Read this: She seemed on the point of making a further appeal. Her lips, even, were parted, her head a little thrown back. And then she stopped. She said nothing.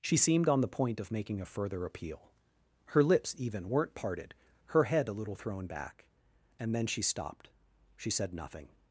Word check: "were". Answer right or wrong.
wrong